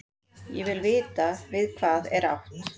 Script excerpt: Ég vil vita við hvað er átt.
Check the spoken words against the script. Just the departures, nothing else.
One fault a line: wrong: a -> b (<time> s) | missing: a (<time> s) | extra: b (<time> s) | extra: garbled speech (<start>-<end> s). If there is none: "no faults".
no faults